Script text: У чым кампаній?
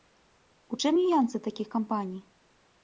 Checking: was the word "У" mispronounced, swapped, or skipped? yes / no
no